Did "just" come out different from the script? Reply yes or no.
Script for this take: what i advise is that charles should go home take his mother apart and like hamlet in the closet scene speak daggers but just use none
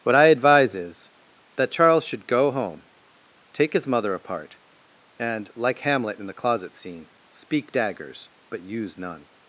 yes